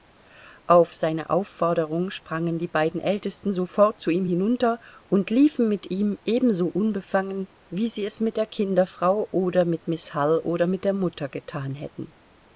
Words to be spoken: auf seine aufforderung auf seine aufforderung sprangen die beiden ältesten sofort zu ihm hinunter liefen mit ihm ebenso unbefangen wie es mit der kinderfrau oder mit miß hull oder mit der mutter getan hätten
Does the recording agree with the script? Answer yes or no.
no